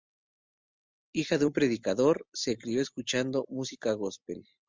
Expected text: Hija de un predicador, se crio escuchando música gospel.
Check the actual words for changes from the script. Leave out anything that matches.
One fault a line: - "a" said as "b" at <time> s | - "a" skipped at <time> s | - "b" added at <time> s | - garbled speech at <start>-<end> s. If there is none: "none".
none